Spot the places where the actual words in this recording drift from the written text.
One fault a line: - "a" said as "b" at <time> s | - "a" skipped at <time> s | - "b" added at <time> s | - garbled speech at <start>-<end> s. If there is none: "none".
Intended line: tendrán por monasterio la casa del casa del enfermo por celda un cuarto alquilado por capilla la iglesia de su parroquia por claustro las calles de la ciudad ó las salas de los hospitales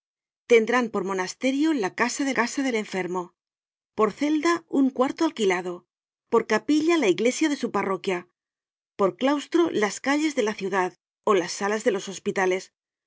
none